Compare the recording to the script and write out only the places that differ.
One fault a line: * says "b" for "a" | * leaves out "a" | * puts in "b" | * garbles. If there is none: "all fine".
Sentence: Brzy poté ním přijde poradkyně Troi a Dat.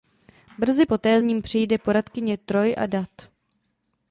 all fine